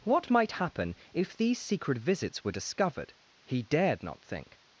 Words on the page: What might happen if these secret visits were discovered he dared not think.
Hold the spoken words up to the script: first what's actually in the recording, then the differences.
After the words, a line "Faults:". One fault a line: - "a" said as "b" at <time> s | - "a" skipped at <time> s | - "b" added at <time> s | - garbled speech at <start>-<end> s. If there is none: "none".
What might happen if these secret visits were discovered he dared not think.
Faults:
none